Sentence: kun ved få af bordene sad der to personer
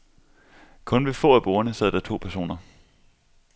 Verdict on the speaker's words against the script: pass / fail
pass